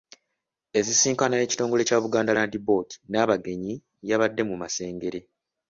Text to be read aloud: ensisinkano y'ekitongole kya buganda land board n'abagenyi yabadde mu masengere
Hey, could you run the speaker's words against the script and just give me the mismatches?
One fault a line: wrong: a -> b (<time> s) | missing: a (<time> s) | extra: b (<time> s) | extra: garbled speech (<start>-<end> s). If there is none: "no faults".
no faults